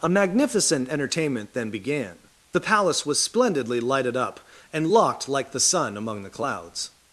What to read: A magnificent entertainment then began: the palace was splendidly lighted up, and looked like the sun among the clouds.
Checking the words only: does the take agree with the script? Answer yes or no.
no